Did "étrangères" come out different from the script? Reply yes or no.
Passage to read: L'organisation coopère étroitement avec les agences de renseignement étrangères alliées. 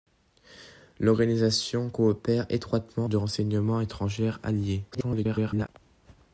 no